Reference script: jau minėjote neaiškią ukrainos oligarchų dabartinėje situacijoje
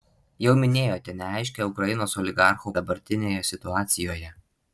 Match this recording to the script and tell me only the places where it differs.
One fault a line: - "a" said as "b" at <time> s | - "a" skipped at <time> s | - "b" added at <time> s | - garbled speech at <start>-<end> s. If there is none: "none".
none